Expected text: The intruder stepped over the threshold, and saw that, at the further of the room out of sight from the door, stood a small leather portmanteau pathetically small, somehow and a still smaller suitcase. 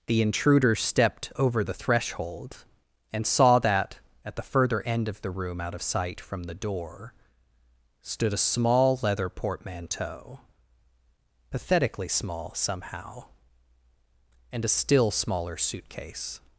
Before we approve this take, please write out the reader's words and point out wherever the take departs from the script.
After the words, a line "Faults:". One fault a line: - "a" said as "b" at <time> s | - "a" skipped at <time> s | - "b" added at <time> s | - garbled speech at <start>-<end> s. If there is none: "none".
The intruder stepped over the threshold, and saw that, at the further end of the room out of sight from the door, stood a small leather portmanteau pathetically small, somehow and a still smaller suitcase.
Faults:
- "end" added at 4.8 s